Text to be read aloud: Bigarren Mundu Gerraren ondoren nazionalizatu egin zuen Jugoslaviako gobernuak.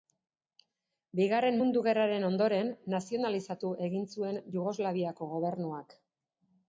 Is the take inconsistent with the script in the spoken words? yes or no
no